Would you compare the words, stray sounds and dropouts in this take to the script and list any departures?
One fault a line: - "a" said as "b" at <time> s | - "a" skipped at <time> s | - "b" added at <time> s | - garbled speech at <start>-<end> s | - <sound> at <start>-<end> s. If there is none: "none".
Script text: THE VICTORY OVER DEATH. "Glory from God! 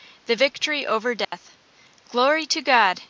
- dropout at 1.2-1.3 s
- "from" said as "to" at 2.5 s